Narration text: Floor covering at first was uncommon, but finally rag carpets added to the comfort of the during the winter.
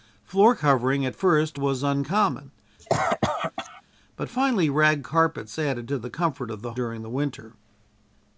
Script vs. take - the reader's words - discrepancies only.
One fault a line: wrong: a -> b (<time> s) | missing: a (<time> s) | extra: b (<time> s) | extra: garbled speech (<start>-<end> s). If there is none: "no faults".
no faults